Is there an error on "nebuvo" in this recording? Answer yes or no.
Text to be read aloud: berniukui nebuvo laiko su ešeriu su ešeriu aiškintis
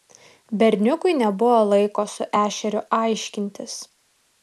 no